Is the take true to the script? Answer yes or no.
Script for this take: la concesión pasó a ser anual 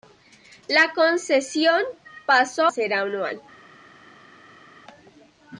no